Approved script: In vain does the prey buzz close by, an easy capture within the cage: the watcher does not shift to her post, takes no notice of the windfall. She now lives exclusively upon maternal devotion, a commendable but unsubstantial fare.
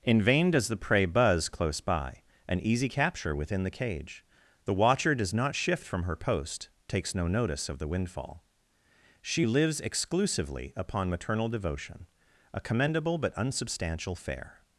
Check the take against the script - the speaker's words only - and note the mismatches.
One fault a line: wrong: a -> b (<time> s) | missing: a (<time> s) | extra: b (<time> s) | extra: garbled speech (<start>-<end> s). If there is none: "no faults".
wrong: to -> from (5.9 s)
missing: now (9.5 s)